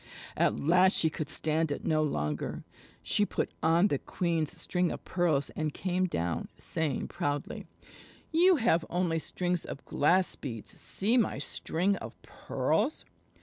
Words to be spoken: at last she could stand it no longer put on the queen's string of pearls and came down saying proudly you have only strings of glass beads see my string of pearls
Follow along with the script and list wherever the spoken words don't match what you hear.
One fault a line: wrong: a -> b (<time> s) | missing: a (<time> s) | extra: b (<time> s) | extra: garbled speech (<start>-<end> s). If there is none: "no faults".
extra: she (3.0 s)